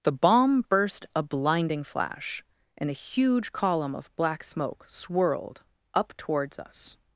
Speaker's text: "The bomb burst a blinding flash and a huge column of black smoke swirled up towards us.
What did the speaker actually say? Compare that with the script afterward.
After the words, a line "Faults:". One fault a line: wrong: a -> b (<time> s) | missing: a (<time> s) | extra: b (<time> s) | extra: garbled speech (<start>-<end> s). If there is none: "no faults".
"The bomb burst a blinding flash and a huge column of black smoke swirled up towards us.
Faults:
no faults